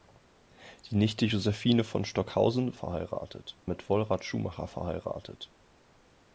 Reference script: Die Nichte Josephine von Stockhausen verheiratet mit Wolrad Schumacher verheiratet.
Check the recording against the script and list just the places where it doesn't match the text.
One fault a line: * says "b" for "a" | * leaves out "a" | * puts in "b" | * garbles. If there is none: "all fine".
all fine